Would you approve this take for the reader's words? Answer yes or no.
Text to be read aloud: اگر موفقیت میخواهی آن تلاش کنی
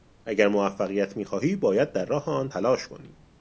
no